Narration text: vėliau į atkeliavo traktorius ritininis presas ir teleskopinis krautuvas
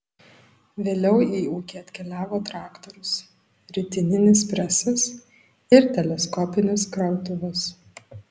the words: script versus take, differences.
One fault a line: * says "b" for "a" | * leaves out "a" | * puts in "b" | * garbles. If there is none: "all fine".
* puts in "ūkį"